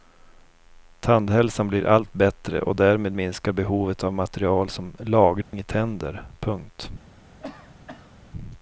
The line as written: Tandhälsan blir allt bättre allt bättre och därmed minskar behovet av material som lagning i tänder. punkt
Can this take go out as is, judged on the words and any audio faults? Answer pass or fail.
fail